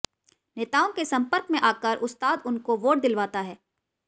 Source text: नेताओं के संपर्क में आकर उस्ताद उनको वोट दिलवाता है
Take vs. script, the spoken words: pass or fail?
pass